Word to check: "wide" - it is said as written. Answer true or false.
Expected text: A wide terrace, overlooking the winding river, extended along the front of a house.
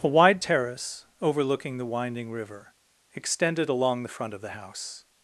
true